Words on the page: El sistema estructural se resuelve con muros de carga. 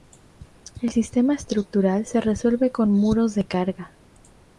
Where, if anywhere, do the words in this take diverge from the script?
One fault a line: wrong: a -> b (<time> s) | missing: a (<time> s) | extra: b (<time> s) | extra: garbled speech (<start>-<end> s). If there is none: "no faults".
no faults